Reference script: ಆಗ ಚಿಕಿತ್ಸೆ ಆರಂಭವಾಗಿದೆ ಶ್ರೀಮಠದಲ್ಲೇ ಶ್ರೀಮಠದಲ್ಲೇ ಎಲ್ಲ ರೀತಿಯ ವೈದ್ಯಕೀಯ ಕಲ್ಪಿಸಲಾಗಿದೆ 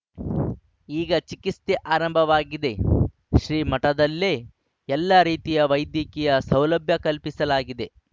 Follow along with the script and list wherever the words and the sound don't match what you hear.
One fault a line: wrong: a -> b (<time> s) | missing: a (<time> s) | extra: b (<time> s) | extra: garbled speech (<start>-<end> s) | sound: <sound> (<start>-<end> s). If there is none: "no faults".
wrong: ಆಗ -> ಈಗ (0.9 s)
missing: ಶ್ರೀಮಠದಲ್ಲೇ (4.3 s)
extra: ಸೌಲಭ್ಯ (6.5 s)